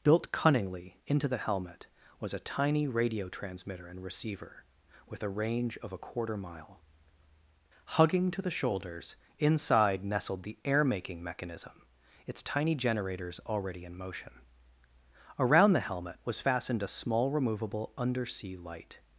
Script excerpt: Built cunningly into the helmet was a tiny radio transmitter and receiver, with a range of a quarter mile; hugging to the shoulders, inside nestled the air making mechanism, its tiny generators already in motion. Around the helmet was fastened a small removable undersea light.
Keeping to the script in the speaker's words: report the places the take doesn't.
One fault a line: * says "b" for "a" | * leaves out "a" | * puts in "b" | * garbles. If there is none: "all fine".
all fine